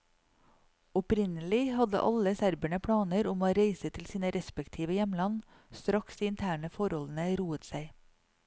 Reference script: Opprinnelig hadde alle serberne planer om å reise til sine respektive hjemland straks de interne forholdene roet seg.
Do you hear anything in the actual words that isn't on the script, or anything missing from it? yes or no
no